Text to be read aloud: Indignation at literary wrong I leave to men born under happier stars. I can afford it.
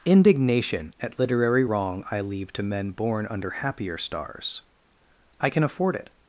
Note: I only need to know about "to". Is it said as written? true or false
true